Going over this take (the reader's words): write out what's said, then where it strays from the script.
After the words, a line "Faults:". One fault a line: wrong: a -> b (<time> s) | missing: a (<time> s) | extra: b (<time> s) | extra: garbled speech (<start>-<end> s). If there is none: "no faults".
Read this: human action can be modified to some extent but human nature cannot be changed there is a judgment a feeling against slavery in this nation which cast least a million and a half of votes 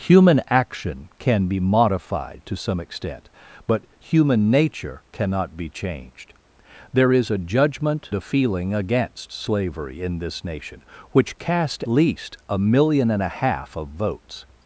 human action can be modified to some extent but human nature cannot be changed there is a judgment a feeling against slavery in this nation which cast least a million and a half of votes
Faults:
no faults